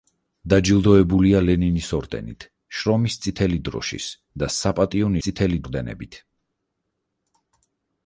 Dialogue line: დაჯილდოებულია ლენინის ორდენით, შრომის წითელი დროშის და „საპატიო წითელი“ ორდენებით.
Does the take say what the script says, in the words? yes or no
yes